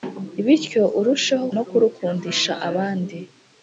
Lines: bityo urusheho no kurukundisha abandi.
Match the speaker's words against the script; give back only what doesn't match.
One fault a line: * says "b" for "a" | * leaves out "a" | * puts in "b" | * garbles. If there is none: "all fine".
all fine